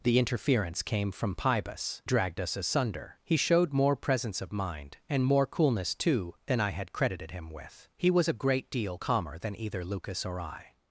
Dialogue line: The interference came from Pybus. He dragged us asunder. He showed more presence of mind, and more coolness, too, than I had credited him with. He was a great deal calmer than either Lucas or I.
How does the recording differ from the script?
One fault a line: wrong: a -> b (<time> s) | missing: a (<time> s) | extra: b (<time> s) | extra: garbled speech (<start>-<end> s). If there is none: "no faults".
missing: He (2.0 s)